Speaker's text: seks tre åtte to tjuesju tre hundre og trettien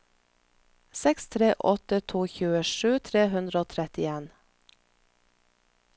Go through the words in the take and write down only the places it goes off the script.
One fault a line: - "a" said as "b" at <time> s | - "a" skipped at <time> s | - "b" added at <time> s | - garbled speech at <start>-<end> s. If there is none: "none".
none